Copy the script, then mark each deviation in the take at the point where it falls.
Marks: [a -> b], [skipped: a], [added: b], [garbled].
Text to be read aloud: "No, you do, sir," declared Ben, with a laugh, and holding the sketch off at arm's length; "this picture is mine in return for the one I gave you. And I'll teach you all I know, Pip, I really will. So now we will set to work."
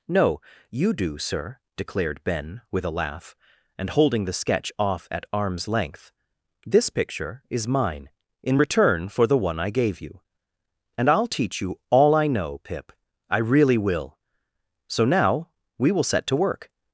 "No, you do, sir," declared Ben, with a laugh, and holding the sketch off at arm's length; "this picture is mine in return for the one I gave you. And I'll teach you all I know, Pip, I really will. So now we will set to work."